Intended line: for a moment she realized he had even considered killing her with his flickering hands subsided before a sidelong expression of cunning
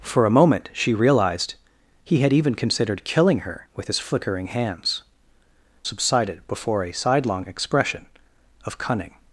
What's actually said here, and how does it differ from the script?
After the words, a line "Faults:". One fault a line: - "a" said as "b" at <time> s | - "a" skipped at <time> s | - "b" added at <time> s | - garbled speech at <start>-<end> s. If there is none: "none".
for a moment she realized he had even considered killing her with his flickering hands subsided before a sidelong expression of cunning
Faults:
none